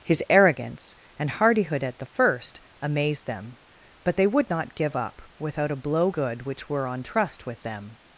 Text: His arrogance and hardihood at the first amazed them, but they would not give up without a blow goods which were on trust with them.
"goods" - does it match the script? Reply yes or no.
no